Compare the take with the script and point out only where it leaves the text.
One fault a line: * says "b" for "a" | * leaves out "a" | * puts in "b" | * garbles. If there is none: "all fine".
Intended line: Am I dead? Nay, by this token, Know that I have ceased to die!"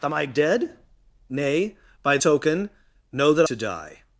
* leaves out "this"
* leaves out "I have ceased"